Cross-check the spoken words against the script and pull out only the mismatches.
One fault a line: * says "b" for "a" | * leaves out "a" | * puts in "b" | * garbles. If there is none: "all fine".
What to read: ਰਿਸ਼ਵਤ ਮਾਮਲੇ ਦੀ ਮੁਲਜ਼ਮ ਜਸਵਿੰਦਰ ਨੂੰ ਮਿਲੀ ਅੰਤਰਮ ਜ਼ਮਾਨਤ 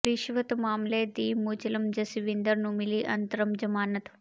all fine